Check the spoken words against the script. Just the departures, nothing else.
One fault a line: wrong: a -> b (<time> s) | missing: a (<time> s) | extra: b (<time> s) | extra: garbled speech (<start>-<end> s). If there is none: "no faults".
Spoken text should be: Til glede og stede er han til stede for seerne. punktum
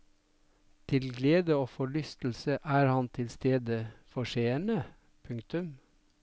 wrong: stede -> forlystelse (1.7 s)